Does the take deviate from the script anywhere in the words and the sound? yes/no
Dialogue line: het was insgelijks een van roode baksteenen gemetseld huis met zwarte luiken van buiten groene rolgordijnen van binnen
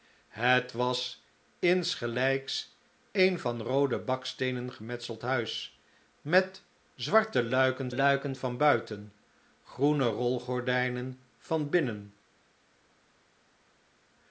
yes